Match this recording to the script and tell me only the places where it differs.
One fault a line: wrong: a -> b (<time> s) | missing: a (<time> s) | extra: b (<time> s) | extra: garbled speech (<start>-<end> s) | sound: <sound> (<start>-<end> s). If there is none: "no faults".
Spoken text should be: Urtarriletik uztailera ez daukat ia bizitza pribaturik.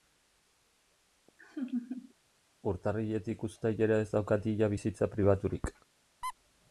sound: laugh (1.4-2.1 s)
sound: squeak (6.2-6.3 s)